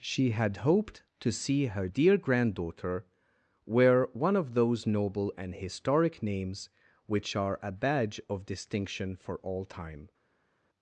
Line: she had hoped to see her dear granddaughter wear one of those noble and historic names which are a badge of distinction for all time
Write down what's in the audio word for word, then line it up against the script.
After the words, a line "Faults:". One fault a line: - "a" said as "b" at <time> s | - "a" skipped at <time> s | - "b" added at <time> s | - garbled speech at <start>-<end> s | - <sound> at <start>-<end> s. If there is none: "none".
she had hoped to see her dear granddaughter wear one of those noble and historic names which are a badge of distinction for all time
Faults:
none